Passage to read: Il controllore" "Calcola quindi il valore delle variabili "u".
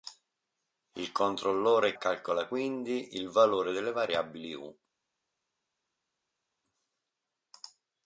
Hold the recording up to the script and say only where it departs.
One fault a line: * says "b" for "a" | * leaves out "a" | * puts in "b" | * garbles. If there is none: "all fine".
all fine